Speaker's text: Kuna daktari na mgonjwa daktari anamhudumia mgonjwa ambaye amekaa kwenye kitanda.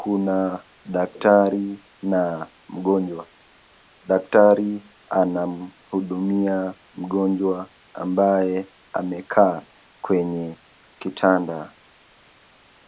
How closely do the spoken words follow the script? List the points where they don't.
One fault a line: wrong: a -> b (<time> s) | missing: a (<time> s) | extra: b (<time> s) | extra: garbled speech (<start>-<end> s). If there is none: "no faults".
no faults